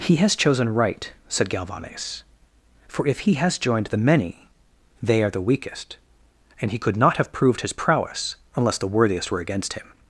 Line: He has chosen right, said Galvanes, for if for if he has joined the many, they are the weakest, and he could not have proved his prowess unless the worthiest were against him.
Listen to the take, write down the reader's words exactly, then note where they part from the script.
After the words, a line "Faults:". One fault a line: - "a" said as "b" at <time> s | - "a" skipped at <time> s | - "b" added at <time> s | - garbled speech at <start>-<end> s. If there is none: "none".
He has chosen right, said Galvanes, for if he has joined the many, they are the weakest, and he could not have proved his prowess unless the worthiest were against him.
Faults:
- "for if" skipped at 3.2 s